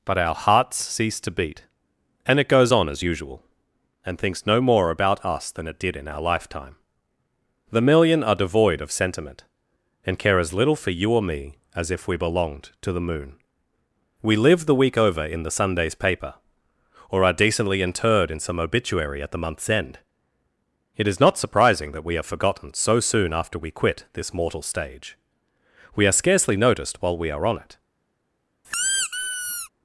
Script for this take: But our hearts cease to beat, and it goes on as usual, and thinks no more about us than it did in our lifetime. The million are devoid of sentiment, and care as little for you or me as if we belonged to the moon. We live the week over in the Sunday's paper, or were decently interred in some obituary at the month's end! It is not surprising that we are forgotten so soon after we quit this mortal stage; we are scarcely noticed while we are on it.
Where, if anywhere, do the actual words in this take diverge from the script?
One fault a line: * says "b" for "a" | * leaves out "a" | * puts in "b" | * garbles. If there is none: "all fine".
* says "are" for "were"